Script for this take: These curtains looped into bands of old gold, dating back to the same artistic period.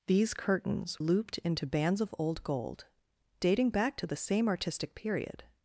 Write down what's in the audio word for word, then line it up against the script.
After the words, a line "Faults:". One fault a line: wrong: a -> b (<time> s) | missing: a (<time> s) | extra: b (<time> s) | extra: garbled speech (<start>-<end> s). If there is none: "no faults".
These curtains looped into bands of old gold, dating back to the same artistic period.
Faults:
no faults